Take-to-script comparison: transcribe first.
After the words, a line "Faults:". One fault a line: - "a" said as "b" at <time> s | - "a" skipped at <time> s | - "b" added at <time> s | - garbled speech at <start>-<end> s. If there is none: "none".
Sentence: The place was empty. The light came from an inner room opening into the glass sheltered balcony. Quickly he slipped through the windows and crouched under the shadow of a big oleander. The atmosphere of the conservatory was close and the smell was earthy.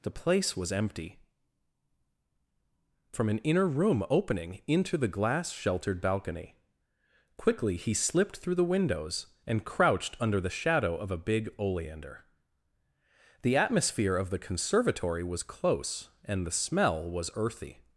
The place was empty. From an inner room opening into the glass sheltered balcony. Quickly he slipped through the windows and crouched under the shadow of a big oleander. The atmosphere of the conservatory was close and the smell was earthy.
Faults:
- "The light came" skipped at 1.2 s